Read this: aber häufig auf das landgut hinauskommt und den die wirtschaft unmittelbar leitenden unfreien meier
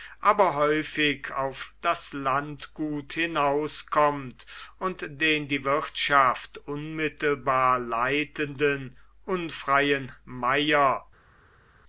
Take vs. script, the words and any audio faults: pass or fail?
pass